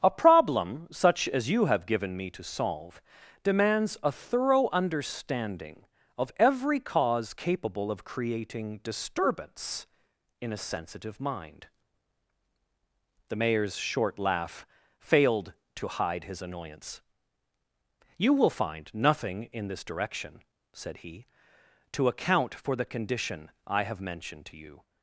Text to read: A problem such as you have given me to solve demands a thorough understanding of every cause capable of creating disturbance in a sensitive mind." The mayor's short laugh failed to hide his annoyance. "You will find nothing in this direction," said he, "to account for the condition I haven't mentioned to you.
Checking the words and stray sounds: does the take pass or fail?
fail